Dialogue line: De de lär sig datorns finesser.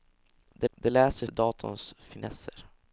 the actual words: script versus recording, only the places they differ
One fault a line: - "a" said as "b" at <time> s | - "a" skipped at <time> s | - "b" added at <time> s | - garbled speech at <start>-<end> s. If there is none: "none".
none